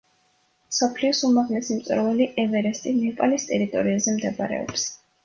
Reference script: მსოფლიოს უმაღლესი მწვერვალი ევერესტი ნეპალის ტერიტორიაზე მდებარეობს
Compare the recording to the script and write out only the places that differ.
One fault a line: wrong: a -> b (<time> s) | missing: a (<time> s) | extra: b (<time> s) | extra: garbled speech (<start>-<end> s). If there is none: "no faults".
no faults